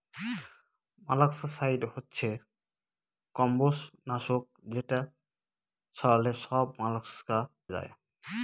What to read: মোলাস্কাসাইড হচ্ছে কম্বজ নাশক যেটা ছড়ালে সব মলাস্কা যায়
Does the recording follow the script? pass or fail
pass